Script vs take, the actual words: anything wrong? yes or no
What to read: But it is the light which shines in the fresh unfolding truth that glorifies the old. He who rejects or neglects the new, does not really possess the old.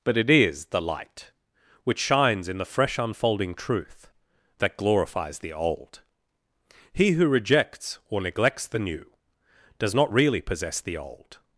no